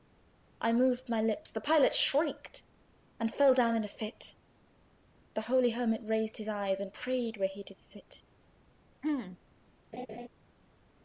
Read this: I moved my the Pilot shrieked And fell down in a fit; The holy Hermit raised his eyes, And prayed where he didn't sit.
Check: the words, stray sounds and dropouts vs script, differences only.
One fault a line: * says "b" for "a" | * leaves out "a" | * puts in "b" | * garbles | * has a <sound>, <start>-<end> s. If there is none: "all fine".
* puts in "lips"
* says "did" for "didn't"
* has a throat clearing, 9.0-9.4 s
* has a laugh, 9.9-10.3 s